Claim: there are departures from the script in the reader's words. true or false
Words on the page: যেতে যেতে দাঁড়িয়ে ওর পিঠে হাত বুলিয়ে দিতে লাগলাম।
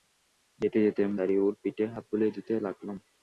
false